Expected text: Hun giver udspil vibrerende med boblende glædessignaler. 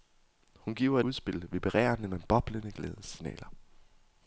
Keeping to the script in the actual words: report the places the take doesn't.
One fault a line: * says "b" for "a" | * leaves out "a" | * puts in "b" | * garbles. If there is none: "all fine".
all fine